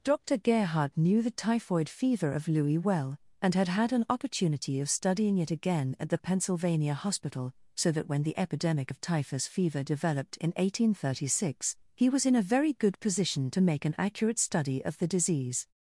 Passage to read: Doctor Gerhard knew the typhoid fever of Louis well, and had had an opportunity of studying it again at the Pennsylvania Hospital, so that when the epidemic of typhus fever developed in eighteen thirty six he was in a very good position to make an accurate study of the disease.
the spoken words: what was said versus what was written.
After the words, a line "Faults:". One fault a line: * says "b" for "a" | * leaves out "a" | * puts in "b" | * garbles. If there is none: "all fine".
Doctor Gerhard knew the typhoid fever of Louis well, and had had an opportunity of studying it again at the Pennsylvania Hospital, so that when the epidemic of typhus fever developed in eighteen thirty six he was in a very good position to make an accurate study of the disease.
Faults:
all fine